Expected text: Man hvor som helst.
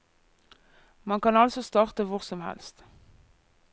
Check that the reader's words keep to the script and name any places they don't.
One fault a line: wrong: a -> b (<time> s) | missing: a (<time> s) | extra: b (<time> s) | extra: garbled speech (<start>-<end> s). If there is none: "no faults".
extra: kan altså starte (1.2 s)